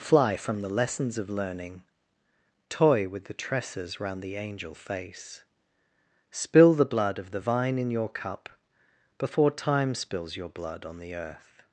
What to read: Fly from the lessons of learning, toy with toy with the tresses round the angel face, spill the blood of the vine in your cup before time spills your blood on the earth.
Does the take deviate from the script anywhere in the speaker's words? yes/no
yes